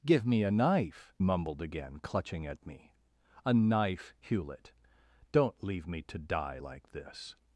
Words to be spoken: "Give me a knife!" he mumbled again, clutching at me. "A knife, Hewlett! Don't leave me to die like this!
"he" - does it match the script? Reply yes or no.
no